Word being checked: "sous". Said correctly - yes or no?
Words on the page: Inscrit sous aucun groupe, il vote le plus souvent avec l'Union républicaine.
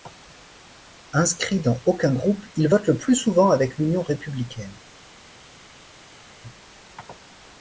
no